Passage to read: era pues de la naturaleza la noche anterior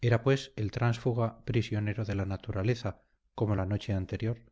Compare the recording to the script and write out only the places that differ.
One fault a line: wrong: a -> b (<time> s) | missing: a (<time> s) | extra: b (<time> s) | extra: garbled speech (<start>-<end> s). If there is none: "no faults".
extra: el tránsfuga prisionero (0.5 s)
extra: como (3.3 s)